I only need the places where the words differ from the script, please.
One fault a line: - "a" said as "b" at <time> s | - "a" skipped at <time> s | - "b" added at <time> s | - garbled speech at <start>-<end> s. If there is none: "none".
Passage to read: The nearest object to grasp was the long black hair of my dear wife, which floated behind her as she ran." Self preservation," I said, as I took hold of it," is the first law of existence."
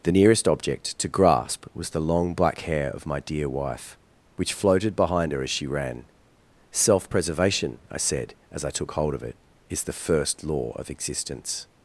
none